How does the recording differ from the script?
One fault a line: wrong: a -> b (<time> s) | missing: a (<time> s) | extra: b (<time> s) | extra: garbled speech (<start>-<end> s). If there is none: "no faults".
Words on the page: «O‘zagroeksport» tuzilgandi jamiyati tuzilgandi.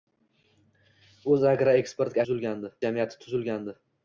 no faults